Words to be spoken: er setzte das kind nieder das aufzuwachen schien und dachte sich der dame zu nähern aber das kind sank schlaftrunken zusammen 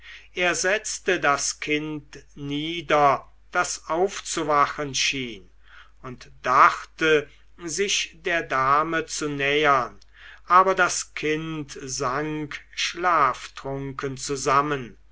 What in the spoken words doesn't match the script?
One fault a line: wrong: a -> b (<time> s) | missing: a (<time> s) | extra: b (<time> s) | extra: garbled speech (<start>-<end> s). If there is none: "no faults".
no faults